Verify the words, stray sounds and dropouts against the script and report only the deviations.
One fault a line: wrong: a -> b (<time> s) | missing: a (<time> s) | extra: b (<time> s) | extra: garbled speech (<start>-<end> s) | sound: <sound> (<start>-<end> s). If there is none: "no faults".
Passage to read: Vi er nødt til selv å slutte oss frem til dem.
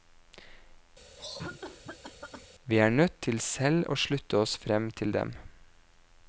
sound: cough (1.2-2.5 s)